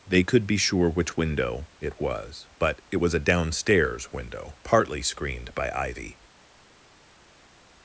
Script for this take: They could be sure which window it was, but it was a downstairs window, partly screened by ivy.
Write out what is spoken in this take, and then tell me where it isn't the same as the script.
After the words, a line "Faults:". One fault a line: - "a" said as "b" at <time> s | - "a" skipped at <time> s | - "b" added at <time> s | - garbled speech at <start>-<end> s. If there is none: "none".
They could be sure which window it was, but it was a downstairs window, partly screened by ivy.
Faults:
none